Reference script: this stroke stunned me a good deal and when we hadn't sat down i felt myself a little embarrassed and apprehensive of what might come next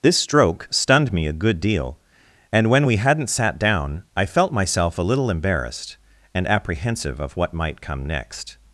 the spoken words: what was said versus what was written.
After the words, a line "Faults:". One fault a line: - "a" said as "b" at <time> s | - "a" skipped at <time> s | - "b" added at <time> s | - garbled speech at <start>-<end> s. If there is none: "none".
this stroke stunned me a good deal and when we hadn't sat down i felt myself a little embarrassed and apprehensive of what might come next
Faults:
none